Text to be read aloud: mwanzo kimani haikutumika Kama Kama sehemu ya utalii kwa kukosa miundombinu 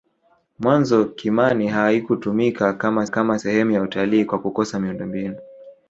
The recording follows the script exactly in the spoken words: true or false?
true